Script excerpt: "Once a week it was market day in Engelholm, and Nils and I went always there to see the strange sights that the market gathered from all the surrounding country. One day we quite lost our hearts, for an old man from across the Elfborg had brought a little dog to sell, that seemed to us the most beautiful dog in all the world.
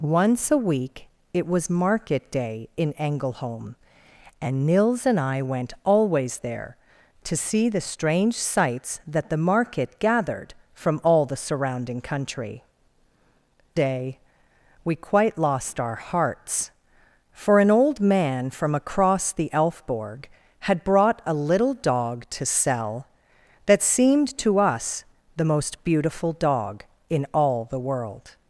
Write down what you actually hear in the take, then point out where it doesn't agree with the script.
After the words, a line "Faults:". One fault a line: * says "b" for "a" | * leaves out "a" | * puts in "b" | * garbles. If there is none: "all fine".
"Once a week it was market day in Engelholm, and Nils and I went always there to see the strange sights that the market gathered from all the surrounding country. Day we quite lost our hearts, for an old man from across the Elfborg had brought a little dog to sell, that seemed to us the most beautiful dog in all the world.
Faults:
* leaves out "One"